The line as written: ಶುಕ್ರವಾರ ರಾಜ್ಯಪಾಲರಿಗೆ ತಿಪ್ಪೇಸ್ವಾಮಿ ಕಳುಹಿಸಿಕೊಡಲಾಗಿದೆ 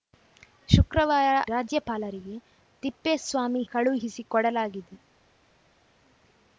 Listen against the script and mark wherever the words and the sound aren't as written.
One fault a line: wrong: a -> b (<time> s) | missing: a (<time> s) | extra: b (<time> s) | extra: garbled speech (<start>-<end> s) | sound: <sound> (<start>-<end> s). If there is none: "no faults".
no faults